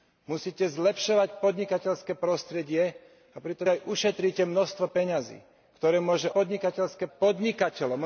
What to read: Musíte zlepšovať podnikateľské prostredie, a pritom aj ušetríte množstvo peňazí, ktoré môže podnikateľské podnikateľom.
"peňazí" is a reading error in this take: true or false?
false